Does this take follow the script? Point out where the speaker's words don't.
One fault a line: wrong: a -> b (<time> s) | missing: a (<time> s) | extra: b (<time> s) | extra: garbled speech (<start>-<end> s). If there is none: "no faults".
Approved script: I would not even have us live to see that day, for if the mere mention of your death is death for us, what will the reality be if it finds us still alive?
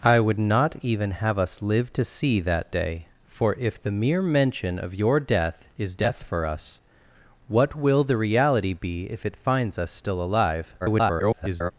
extra: garbled speech (10.8-11.7 s)